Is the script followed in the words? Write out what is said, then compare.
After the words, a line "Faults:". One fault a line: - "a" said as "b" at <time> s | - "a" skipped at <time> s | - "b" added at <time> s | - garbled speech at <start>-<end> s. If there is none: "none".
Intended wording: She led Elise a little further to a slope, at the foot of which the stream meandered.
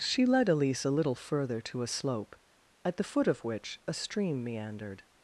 She led Elise a little further to a slope, at the foot of which a stream meandered.
Faults:
- "the" said as "a" at 3.9 s